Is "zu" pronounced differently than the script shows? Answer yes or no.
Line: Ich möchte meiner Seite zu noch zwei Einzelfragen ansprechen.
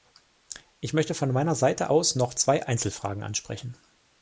yes